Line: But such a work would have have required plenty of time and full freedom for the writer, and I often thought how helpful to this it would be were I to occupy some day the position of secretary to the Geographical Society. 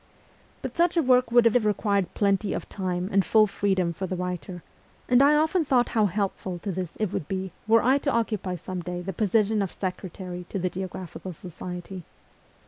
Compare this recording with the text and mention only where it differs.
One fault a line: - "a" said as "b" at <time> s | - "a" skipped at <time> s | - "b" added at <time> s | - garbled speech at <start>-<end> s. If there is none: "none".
none